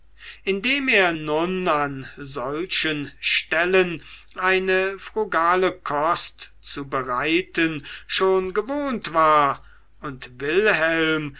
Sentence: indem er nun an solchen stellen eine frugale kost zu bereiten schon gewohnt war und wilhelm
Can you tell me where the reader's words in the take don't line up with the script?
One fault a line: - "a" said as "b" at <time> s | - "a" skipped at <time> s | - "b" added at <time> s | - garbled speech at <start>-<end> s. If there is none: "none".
none